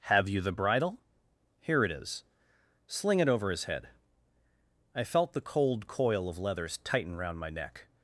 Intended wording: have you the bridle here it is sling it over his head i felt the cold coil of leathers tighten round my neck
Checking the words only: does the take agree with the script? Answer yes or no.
yes